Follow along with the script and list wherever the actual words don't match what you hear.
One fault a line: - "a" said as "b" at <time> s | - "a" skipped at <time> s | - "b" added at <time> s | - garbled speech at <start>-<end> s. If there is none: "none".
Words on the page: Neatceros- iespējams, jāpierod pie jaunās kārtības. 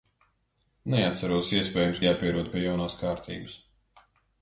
none